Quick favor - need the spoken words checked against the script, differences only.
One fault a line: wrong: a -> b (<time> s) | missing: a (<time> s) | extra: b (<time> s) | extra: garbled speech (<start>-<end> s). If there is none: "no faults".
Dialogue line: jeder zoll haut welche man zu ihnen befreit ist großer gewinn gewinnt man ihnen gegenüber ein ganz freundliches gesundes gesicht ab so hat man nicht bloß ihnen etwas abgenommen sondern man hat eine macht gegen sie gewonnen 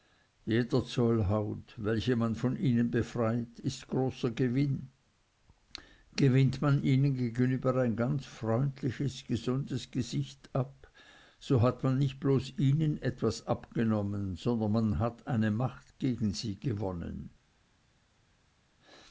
wrong: zu -> von (2.3 s)